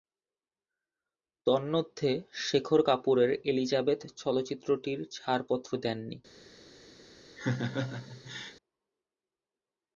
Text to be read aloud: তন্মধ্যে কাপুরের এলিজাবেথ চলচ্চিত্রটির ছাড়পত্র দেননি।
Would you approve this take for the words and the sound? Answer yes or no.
no